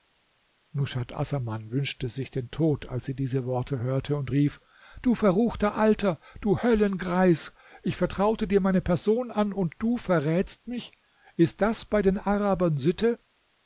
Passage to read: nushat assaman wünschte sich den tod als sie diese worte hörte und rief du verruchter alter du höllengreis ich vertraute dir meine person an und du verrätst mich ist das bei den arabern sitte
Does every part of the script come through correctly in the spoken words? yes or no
yes